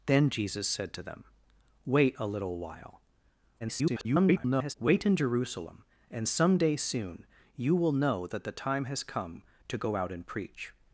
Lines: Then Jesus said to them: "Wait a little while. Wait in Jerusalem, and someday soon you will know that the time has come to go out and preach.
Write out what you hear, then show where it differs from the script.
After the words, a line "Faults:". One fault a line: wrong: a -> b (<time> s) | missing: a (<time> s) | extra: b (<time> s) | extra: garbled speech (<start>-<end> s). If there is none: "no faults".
Then Jesus said to them: "Wait a little while. [garbled] Wait in Jerusalem, and someday soon you will know that the time has come to go out and preach.
Faults:
extra: garbled speech (3.6-4.7 s)